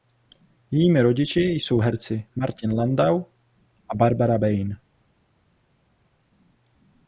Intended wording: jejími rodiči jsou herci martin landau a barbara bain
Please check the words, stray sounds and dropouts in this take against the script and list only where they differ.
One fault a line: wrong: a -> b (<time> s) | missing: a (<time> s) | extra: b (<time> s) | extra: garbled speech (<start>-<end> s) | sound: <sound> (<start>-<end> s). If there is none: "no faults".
no faults